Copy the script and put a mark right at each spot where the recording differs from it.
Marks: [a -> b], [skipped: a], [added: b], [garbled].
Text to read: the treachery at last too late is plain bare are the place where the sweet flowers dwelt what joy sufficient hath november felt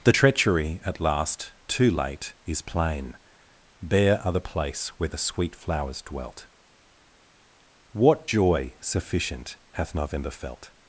the treachery at last too late is plain bare are the place where the sweet flowers dwelt what joy sufficient hath november felt